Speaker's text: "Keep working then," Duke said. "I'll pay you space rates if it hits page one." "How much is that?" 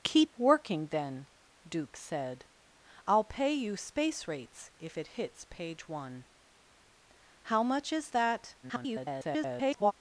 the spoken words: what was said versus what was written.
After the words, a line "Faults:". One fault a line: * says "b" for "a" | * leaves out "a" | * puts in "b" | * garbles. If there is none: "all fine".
"Keep working then," Duke said. "I'll pay you space rates if it hits page one." "How much is that?" [garbled]
Faults:
* garbles